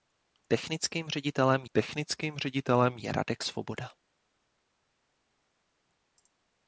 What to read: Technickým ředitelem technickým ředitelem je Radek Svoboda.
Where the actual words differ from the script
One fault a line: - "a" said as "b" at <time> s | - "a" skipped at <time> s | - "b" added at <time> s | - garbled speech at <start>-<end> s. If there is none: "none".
none